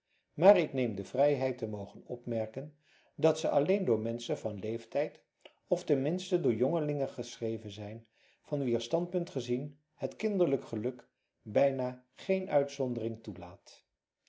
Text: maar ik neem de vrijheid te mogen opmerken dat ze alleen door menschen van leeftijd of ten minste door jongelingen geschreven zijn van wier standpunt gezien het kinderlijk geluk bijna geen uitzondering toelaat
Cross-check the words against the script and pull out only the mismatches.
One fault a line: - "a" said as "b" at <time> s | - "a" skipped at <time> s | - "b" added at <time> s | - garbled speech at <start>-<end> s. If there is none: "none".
none